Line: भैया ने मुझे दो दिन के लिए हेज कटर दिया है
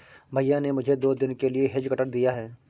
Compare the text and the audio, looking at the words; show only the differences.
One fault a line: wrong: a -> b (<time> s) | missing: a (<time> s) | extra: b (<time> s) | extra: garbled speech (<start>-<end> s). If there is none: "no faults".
no faults